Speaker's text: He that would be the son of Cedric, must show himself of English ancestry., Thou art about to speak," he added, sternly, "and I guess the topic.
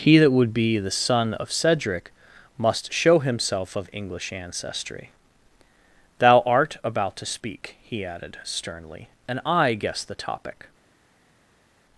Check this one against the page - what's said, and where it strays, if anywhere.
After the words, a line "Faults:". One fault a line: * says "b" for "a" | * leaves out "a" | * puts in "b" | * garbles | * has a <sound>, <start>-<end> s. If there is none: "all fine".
He that would be the son of Cedric, must show himself of English ancestry., Thou art about to speak," he added, sternly, "and I guess the topic.
Faults:
all fine